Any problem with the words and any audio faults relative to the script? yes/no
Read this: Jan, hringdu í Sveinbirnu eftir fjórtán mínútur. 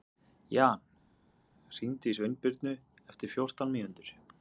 no